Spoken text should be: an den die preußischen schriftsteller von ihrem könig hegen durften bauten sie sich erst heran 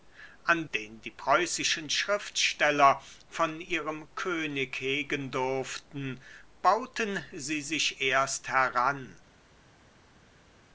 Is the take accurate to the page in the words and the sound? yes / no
yes